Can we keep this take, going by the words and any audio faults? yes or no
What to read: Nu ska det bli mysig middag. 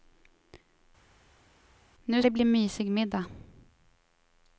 no